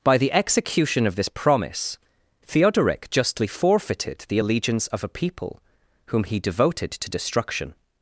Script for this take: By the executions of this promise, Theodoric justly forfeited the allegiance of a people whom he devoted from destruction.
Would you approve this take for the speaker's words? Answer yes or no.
no